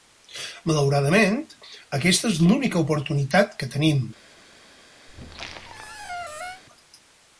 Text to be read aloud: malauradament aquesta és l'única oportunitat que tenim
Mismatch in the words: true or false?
false